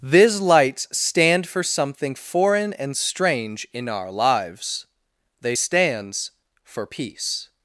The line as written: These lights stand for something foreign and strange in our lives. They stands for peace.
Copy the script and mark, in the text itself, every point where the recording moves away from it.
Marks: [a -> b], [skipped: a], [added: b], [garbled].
These lights stand for something foreign and strange in our lives. They stands for peace.